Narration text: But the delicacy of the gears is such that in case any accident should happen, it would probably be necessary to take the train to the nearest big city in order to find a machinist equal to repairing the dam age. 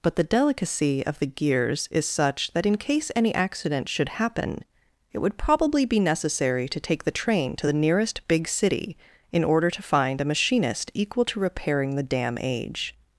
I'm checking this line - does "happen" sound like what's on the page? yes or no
yes